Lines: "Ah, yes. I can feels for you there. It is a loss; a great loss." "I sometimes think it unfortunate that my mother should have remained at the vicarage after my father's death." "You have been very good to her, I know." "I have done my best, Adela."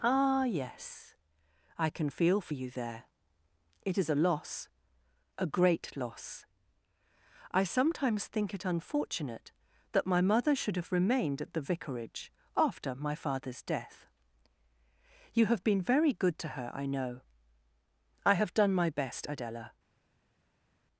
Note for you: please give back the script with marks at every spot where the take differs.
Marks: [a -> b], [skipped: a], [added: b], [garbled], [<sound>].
"Ah, yes. I can [feels -> feel] for you there. It is a loss; a great loss." "I sometimes think it unfortunate that my mother should have remained at the vicarage after my father's death." "You have been very good to her, I know." "I have done my best, Adela."